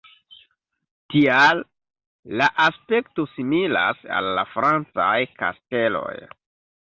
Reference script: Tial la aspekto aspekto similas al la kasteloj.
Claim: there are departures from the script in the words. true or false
true